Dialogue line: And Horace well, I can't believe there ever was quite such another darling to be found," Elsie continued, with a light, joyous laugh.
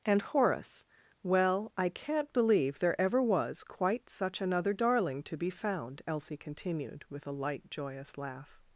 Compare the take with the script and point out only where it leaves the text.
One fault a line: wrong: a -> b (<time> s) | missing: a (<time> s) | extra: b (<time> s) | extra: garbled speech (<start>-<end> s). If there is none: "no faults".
no faults